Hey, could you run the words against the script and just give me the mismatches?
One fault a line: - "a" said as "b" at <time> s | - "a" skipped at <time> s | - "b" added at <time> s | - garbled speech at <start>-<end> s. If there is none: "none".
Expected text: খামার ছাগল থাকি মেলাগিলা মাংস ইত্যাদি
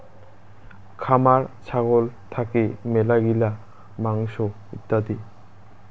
none